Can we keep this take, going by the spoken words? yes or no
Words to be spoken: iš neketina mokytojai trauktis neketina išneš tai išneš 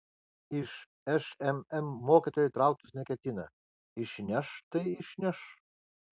no